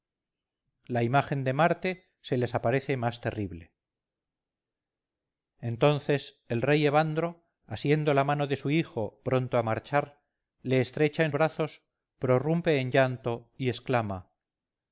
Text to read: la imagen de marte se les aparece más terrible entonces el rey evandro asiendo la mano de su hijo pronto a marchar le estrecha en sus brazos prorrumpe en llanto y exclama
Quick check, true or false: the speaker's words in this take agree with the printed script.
false